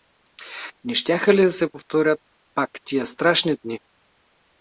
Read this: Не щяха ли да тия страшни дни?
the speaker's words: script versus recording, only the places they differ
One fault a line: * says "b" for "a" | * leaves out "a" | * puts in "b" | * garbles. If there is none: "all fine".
* puts in "се повторят пак"